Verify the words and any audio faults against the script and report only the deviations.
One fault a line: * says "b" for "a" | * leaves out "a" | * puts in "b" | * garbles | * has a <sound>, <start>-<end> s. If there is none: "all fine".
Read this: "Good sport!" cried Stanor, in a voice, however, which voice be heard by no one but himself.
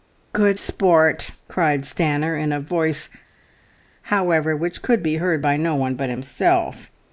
* says "could" for "voice"